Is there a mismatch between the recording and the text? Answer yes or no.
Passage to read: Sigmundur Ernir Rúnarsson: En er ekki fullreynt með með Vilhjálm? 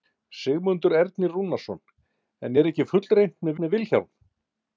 no